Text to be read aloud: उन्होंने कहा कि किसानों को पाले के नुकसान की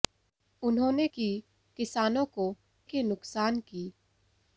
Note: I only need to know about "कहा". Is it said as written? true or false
false